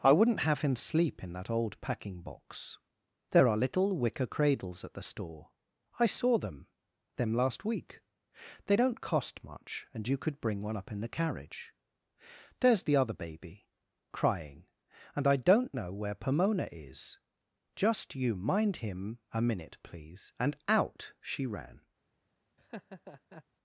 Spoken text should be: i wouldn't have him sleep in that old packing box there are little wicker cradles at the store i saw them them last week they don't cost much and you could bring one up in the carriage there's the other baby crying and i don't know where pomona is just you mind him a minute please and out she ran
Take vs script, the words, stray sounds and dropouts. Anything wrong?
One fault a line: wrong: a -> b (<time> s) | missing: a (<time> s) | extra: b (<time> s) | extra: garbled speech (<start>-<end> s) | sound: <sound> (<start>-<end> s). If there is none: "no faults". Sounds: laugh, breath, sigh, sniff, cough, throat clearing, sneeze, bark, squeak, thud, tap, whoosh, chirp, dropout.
sound: laugh (22.6-23.4 s)